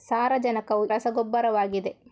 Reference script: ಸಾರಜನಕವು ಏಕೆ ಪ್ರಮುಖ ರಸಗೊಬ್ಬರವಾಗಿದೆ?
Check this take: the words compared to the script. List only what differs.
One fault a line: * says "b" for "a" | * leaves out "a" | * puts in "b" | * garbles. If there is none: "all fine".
* leaves out "ಏಕೆ ಪ್ರಮುಖ"